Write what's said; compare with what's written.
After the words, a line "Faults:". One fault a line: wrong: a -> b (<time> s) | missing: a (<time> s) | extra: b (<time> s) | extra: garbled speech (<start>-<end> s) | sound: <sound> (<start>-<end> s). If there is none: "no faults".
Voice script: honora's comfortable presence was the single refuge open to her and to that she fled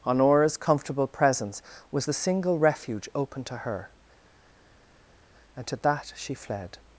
honora's comfortable presence was the single refuge open to her and to that she fled
Faults:
no faults